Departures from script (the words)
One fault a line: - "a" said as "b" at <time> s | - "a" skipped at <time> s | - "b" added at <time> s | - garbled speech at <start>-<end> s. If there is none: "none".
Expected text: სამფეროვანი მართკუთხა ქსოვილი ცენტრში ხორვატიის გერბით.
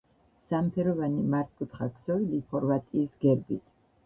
- "ცენტრში" skipped at 2.4 s